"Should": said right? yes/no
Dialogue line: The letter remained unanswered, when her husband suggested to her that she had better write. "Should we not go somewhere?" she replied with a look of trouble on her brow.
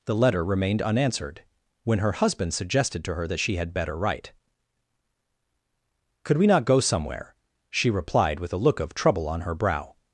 no